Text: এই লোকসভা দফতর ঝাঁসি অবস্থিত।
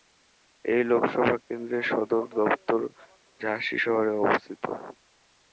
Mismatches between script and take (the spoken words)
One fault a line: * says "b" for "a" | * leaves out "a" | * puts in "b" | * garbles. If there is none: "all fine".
* puts in "কেন্দ্রের সদর"
* puts in "শহরে"